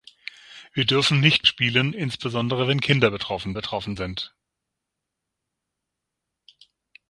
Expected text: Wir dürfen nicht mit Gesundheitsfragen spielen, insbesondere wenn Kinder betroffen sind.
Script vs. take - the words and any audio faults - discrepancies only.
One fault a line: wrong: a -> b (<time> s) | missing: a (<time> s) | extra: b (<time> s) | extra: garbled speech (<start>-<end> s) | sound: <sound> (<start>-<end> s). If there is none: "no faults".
missing: mit Gesundheitsfragen (1.5 s)
extra: betroffen (3.5 s)